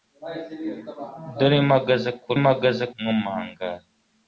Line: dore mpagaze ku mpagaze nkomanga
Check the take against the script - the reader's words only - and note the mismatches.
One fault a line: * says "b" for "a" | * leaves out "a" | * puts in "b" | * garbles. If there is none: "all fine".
all fine